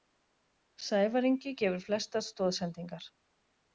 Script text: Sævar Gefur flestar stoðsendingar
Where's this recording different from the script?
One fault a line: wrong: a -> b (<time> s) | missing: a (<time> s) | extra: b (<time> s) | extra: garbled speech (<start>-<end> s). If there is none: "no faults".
extra: Ingi (1.3 s)